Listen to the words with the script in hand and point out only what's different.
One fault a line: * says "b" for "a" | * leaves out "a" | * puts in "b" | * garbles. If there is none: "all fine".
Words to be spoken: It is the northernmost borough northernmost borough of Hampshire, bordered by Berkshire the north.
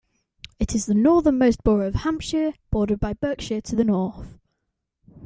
* leaves out "northernmost borough"
* puts in "to"